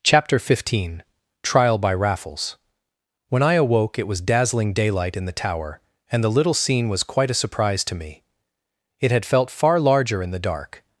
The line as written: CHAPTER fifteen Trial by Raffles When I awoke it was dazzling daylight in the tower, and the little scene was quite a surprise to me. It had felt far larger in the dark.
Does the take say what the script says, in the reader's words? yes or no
yes